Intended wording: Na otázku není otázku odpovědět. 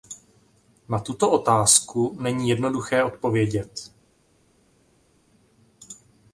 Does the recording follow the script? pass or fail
fail